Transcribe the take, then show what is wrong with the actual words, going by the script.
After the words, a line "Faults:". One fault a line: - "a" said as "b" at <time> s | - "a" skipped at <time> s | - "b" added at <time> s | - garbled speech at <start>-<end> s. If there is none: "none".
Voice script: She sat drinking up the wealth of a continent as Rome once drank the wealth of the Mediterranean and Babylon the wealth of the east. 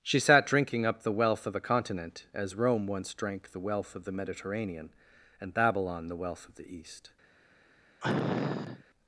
She sat drinking up the wealth of a continent as Rome once drank the wealth of the Mediterranean and Babylon the wealth of the east.
Faults:
none